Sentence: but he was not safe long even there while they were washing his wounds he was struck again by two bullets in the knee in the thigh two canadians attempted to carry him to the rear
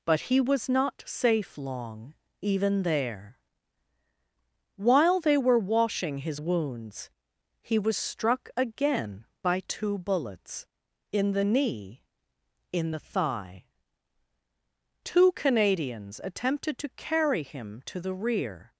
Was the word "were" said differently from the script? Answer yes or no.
no